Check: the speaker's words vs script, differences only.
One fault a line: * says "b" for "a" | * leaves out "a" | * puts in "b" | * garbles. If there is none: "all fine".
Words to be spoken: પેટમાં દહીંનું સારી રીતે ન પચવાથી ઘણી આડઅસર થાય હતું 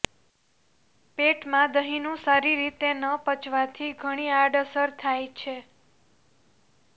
* says "છે" for "હતું"